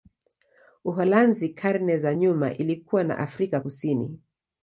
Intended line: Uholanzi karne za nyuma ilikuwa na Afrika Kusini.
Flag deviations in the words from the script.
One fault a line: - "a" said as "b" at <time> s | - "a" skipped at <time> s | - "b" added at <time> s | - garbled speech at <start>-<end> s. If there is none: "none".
none